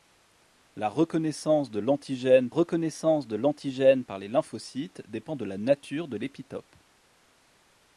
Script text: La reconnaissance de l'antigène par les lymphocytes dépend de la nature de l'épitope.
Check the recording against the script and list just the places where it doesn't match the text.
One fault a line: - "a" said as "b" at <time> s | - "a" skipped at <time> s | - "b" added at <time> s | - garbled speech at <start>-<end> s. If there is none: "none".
- "reconnaissance de l'antigène" added at 2.5 s